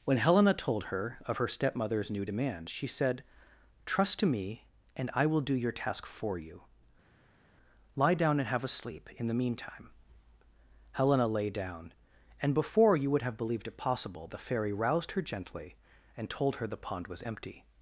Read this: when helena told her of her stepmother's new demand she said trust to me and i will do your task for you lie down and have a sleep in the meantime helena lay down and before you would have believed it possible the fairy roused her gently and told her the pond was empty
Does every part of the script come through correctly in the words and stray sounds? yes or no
yes